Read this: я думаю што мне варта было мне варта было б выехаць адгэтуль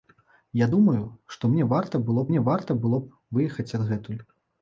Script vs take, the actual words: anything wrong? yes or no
no